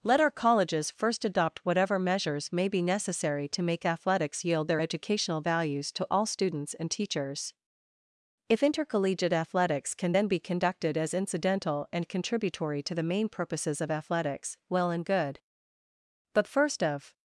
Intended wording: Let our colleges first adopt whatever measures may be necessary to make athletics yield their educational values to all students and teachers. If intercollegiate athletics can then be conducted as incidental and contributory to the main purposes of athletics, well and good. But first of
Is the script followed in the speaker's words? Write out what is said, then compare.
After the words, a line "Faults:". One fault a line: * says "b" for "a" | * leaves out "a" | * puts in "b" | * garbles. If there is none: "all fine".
Let our colleges first adopt whatever measures may be necessary to make athletics yield their educational values to all students and teachers. If intercollegiate athletics can then be conducted as incidental and contributory to the main purposes of athletics, well and good. But first of
Faults:
all fine